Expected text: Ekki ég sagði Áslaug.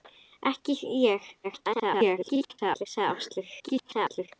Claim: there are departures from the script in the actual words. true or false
true